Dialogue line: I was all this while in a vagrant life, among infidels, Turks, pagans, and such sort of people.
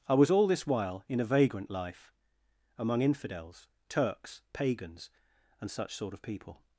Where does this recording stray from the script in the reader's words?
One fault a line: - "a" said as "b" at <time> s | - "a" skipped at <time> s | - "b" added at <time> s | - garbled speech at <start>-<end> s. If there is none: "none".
none